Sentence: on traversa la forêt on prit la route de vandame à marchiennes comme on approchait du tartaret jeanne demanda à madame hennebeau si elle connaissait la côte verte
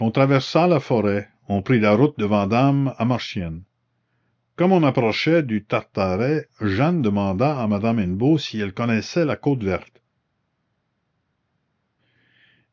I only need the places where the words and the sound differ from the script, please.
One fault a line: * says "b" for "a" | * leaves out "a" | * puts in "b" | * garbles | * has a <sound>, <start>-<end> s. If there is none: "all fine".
all fine